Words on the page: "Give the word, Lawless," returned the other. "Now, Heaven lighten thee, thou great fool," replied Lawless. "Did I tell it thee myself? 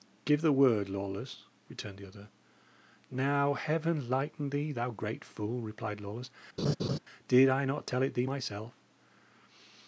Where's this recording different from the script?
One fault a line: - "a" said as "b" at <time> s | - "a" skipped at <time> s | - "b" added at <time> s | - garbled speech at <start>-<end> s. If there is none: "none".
- "not" added at 7.7 s